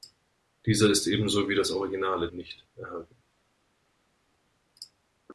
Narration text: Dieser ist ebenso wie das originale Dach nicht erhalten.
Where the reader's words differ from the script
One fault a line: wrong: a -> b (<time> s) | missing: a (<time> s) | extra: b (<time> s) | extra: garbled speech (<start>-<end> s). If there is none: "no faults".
missing: Dach (2.3 s)